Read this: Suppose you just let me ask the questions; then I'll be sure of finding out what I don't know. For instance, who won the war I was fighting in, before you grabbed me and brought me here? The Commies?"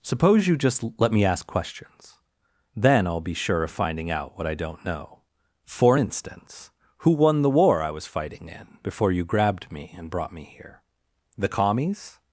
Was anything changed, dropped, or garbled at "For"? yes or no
no